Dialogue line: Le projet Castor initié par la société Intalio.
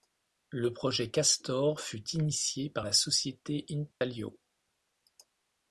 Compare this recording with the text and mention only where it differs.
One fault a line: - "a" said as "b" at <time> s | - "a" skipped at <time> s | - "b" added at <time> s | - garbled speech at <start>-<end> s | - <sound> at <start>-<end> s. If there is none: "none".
- "fut" added at 1.8 s
- dropout at 3.9-4.0 s